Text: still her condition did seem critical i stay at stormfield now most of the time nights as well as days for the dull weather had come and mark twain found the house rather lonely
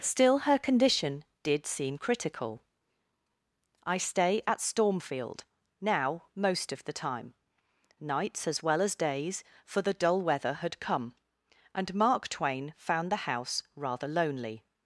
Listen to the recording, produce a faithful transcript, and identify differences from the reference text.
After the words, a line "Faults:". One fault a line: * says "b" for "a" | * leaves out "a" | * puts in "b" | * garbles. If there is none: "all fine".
still her condition did seem critical i stay at stormfield now most of the time nights as well as days for the dull weather had come and mark twain found the house rather lonely
Faults:
all fine